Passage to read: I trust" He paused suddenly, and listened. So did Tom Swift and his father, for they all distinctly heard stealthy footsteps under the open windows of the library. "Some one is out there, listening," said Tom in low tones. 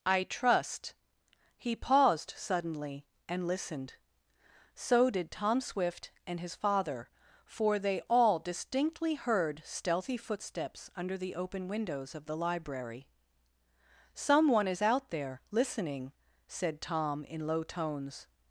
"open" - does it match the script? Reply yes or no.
yes